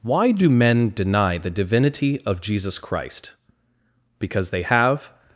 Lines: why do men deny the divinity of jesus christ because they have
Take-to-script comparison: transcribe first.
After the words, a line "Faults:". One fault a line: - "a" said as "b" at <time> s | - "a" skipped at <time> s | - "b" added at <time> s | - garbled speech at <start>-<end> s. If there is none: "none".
why do men deny the divinity of jesus christ because they have
Faults:
none